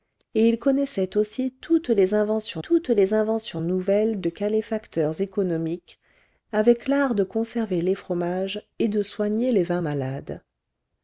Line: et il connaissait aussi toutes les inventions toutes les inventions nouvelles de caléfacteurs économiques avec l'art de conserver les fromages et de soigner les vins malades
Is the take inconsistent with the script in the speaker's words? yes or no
no